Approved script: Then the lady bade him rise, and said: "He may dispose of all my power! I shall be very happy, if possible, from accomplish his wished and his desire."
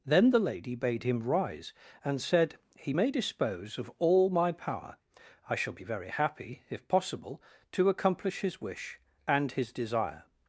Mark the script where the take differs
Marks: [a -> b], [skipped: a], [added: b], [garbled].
Then the lady bade him rise, and said: "He may dispose of all my power! I shall be very happy, if possible, [from -> to] accomplish his [wished -> wish] and his desire."